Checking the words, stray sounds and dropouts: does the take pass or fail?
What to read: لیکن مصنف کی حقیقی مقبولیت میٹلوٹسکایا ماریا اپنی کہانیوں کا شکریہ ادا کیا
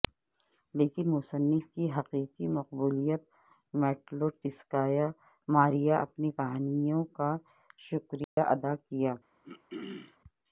fail